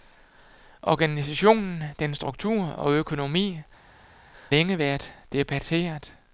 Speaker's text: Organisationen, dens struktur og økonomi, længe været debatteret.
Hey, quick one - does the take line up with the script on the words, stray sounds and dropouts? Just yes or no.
yes